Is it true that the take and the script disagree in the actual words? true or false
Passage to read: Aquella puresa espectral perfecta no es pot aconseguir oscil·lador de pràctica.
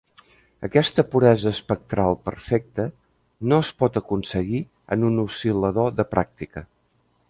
true